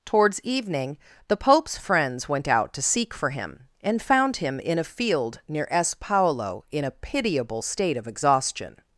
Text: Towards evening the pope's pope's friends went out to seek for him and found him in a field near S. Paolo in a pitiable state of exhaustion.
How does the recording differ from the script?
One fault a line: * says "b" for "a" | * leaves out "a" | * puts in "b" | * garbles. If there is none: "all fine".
* leaves out "pope's"